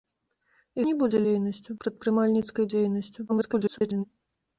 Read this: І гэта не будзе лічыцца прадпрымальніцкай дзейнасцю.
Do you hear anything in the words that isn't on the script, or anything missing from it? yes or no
yes